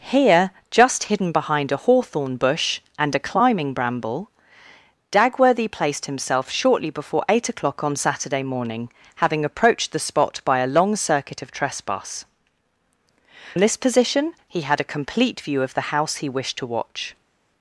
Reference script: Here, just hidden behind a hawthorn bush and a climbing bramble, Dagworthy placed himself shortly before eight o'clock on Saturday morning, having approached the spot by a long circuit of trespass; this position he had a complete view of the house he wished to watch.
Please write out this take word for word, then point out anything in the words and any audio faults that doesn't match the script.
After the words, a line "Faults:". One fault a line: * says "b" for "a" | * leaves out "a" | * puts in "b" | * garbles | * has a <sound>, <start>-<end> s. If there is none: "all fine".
Here, just hidden behind a hawthorn bush and a climbing bramble, Dagworthy placed himself shortly before eight o'clock on Saturday morning, having approached the spot by a long circuit of trespass; this position he had a complete view of the house he wished to watch.
Faults:
all fine